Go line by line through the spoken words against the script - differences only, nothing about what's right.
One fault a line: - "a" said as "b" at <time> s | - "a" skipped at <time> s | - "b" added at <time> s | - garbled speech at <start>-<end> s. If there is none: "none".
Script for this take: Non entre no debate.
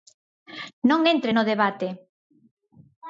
none